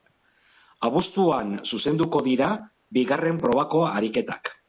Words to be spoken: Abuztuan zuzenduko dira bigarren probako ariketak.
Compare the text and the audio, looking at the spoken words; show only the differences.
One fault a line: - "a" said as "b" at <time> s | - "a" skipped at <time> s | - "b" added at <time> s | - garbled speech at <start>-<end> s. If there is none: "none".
none